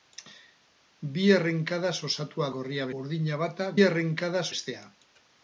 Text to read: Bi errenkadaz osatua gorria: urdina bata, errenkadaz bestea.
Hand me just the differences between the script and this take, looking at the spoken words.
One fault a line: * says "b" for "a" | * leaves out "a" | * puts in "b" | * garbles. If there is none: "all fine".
all fine